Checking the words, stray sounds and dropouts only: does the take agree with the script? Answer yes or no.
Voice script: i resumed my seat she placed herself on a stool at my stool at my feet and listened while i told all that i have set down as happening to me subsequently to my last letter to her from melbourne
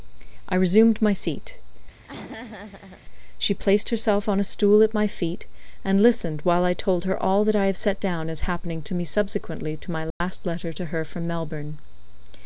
no